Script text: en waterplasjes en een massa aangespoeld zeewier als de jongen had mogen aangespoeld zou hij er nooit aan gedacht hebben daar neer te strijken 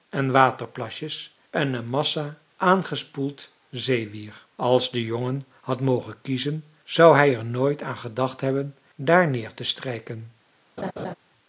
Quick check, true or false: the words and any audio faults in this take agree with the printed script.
false